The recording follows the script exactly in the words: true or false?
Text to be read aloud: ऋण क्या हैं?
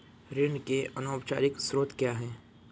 false